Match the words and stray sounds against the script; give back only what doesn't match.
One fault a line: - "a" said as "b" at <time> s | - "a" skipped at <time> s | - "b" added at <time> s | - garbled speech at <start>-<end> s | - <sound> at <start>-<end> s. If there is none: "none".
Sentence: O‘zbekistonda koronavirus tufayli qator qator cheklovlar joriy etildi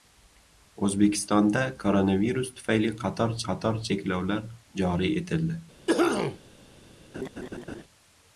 - cough at 5.9-6.4 s
- laugh at 7.1-7.8 s